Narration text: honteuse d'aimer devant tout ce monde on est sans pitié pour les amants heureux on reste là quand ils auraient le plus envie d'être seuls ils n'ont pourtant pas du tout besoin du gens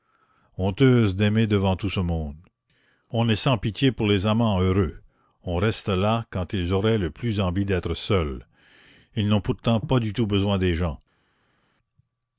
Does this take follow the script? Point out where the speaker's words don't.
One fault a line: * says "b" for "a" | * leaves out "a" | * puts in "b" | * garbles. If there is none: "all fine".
* says "des" for "du"